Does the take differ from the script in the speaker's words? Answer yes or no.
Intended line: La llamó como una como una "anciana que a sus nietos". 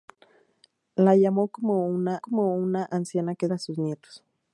no